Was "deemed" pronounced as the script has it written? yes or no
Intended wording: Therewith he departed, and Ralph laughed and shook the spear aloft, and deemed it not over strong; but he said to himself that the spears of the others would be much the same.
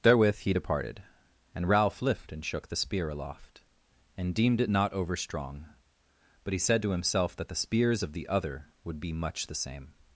yes